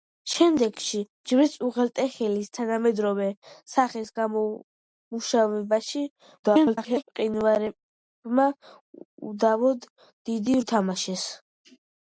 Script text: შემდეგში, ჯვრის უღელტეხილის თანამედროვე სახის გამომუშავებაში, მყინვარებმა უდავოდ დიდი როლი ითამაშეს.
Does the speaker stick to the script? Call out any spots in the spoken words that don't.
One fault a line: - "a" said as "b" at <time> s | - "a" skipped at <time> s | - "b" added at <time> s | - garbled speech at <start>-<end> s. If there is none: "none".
- garbled speech at 6.4-7.0 s
- "როლი" skipped at 10.6 s